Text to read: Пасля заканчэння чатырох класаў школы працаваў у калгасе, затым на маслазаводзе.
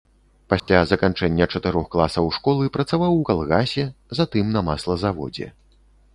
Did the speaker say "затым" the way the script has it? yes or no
yes